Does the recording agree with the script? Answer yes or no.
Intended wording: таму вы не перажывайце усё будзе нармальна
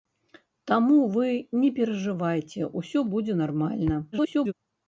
no